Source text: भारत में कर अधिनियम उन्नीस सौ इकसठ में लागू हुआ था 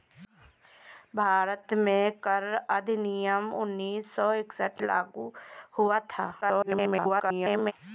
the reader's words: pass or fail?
fail